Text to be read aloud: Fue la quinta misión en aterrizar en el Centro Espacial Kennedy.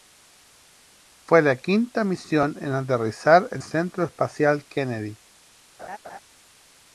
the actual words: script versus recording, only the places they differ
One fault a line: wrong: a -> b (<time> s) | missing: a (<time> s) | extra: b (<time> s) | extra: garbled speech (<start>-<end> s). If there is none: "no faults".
missing: el (3.6 s)